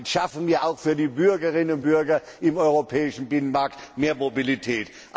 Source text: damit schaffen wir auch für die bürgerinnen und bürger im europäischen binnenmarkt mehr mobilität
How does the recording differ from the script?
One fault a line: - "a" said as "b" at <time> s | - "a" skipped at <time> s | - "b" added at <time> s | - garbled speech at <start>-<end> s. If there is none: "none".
none